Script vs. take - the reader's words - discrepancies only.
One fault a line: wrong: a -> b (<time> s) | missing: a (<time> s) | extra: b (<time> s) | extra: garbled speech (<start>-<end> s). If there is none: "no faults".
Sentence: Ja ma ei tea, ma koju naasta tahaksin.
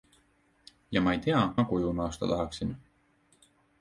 no faults